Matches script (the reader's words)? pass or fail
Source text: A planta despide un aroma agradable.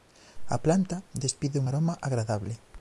pass